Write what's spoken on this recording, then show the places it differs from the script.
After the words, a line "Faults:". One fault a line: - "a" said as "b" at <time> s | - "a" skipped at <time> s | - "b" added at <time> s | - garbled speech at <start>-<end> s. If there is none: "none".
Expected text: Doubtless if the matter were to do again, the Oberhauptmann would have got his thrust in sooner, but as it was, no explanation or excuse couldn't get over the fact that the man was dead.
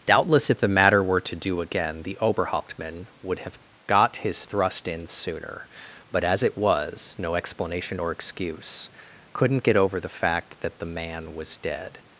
Doubtless if the matter were to do again, the Oberhauptmann would have got his thrust in sooner, but as it was, no explanation or excuse couldn't get over the fact that the man was dead.
Faults:
none